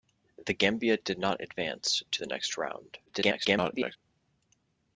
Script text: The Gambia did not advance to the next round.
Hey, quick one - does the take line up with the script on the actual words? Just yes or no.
no